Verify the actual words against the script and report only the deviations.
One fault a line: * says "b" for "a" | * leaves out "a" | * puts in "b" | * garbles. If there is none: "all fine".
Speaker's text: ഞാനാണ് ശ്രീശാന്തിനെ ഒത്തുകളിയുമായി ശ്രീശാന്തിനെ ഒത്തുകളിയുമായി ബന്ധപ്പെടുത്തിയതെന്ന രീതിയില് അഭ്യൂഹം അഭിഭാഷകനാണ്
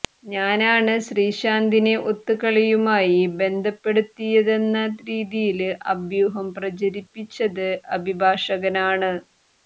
* leaves out "ശ്രീശാന്തിനെ ഒത്തുകളിയുമായി"
* puts in "പ്രചരിപ്പിച്ചത്"